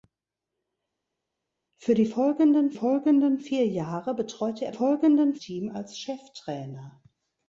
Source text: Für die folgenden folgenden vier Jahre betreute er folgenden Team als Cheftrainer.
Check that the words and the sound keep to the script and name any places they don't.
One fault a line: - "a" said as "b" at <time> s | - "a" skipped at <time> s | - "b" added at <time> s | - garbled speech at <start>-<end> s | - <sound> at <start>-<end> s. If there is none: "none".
none